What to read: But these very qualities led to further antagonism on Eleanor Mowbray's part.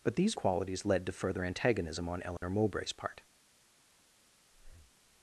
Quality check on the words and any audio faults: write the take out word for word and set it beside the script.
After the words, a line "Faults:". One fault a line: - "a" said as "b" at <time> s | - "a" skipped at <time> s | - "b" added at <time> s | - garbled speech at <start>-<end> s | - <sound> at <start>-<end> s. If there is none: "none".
But these qualities led to further antagonism on Eleanor Mowbray's part.
Faults:
- "very" skipped at 0.3 s
- dropout at 2.4-2.4 s
- breath at 4.5-5.0 s